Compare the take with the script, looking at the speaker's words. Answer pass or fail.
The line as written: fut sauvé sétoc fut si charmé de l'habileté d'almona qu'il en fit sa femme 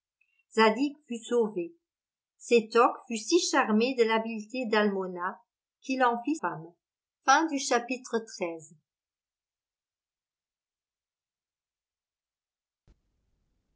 fail